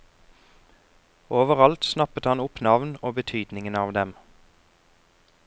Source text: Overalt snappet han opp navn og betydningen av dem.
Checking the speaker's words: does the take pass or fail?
pass